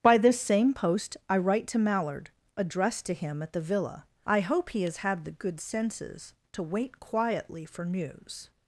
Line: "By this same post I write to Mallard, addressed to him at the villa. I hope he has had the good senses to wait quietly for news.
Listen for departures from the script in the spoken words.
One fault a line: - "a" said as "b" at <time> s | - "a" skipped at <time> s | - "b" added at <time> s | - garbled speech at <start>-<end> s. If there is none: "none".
none